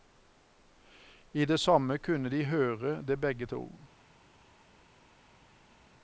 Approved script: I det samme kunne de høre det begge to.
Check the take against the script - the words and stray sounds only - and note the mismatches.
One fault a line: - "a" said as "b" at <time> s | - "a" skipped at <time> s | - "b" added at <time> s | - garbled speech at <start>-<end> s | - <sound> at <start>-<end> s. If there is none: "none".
none